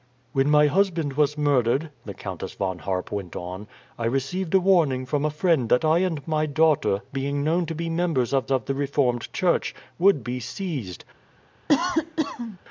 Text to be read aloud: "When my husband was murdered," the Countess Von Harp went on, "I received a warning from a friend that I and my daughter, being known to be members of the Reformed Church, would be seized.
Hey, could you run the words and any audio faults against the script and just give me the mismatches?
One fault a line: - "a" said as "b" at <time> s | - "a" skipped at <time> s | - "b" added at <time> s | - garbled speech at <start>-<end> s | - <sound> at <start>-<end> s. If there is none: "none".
- "of" added at 8.5 s
- cough at 11.7-12.6 s